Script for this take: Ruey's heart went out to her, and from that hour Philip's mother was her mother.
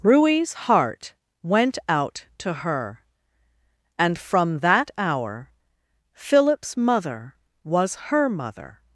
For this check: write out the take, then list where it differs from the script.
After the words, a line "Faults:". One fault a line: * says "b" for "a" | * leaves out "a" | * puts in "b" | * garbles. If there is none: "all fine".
Ruey's heart went out to her, and from that hour Philip's mother was her mother.
Faults:
all fine